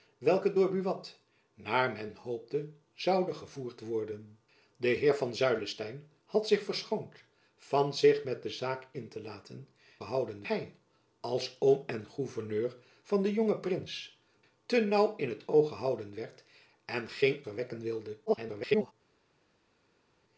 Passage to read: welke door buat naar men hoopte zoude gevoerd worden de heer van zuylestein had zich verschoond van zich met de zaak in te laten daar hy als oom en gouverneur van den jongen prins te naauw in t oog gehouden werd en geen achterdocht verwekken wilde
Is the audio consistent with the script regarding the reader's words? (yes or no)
no